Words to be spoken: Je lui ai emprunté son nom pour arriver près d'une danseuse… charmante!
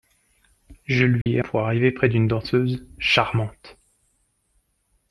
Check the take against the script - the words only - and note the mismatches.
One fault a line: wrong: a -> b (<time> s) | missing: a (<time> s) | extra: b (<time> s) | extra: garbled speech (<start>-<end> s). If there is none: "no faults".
missing: emprunté son nom (1.4 s)